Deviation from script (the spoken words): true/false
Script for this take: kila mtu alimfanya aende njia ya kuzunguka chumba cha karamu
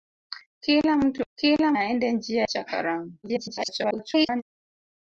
true